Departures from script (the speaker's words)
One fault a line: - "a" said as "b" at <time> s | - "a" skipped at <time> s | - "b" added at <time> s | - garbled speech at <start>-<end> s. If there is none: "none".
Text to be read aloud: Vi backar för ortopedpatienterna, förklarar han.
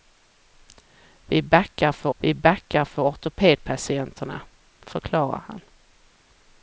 - "vi backar för" added at 2.2 s